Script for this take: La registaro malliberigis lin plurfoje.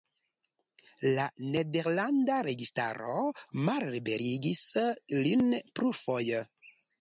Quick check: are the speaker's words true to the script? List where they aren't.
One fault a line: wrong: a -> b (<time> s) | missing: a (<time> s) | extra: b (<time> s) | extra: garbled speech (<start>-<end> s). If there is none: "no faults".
extra: nederlanda (1.6 s)